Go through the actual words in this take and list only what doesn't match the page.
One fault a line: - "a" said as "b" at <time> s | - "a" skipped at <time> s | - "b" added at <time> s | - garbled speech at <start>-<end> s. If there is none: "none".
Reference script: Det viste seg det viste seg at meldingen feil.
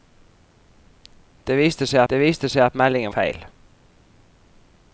none